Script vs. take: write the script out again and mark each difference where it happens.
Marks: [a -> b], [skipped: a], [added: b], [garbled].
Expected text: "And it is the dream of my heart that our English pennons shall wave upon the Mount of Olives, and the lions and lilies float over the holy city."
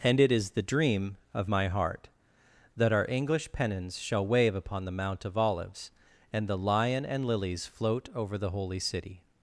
"And it is the dream of my heart that our English pennons shall wave upon the Mount of Olives, and the [lions -> lion] and lilies float over the holy city."